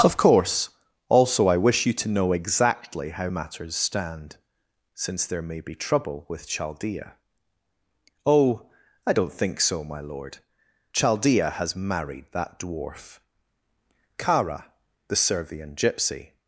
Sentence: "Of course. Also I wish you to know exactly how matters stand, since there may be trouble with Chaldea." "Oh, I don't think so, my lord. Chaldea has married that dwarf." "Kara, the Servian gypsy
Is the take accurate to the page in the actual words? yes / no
yes